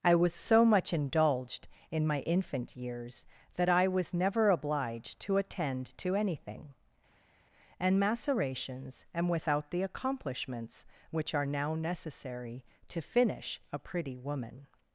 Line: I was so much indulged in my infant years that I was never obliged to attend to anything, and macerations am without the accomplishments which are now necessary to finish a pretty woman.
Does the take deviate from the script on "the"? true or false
false